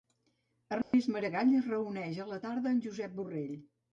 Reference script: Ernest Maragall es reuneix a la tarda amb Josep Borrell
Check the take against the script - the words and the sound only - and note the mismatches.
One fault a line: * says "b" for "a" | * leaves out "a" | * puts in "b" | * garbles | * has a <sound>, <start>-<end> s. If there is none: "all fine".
* has a dropout, 0.8-0.9 s